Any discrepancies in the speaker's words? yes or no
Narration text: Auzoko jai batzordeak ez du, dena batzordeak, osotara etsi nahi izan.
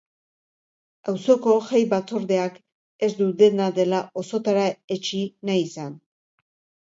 yes